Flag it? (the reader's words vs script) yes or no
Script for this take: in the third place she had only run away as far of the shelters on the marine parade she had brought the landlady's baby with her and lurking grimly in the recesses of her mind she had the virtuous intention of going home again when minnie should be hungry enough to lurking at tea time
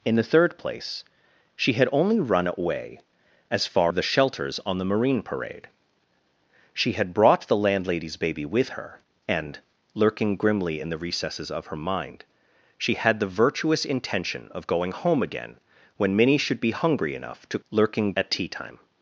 no